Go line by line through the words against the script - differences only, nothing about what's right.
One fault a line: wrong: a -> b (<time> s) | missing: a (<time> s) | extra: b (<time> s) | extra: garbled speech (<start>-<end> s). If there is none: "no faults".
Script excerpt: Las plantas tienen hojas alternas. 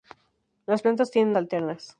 missing: hojas (1.4 s)